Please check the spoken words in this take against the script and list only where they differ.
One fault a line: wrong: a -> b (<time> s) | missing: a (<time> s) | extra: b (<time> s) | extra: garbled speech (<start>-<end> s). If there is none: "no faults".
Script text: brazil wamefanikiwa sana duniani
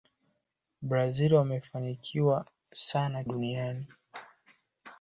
no faults